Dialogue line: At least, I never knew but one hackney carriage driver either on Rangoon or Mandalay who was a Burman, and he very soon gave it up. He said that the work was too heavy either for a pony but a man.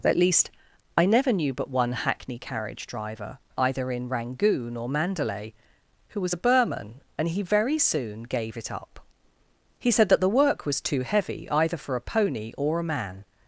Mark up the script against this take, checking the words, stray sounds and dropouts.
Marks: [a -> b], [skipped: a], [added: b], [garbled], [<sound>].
At least, I never knew but one hackney carriage driver either [on -> in] Rangoon or Mandalay who was a Burman, and he very soon gave it up. He said that the work was too heavy either for a pony [but -> or] a man.